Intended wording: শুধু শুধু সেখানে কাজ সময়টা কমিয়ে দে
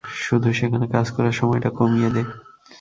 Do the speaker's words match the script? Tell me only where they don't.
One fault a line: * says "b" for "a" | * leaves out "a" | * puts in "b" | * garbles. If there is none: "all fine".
* leaves out "শুধু"
* puts in "করার"